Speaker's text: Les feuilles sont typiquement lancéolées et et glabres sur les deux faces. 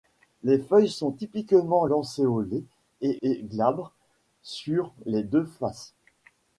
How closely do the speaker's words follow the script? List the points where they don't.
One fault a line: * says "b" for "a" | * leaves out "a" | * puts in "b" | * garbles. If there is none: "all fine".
all fine